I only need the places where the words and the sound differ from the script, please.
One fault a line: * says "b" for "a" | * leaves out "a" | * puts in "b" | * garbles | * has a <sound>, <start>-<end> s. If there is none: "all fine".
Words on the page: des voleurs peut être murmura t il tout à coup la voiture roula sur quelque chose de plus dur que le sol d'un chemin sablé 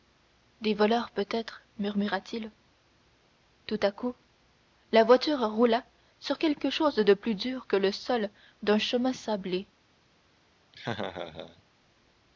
* has a laugh, 10.7-11.6 s